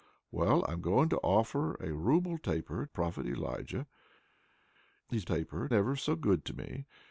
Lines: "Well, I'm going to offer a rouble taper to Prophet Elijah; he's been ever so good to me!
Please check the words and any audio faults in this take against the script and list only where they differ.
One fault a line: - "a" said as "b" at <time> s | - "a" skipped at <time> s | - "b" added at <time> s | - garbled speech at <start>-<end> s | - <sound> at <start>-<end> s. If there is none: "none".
- "to" skipped at 2.9 s
- "been" said as "taper" at 5.2 s